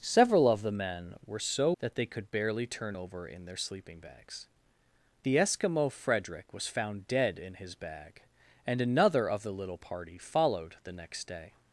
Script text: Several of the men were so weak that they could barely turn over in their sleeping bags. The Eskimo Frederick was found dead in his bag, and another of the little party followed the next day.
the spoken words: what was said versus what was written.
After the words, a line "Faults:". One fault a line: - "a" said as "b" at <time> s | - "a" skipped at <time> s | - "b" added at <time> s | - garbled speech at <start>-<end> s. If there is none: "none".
Several of the men were so that they could barely turn over in their sleeping bags. The Eskimo Frederick was found dead in his bag, and another of the little party followed the next day.
Faults:
- "weak" skipped at 1.7 s